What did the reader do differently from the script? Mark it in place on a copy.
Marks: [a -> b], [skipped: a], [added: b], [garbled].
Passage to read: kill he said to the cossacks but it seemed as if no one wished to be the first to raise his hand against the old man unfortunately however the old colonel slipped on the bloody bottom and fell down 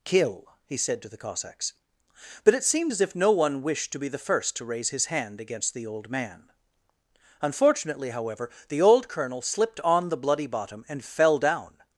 kill he said to the cossacks but it seemed as if no one wished to be the first to raise his hand against the old man unfortunately however the old colonel slipped on the bloody bottom and fell down